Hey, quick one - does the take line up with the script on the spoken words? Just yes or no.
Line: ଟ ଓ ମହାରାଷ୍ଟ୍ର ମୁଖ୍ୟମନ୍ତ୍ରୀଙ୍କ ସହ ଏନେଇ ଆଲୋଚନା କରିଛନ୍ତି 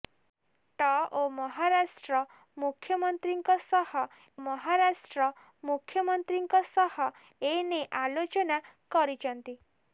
no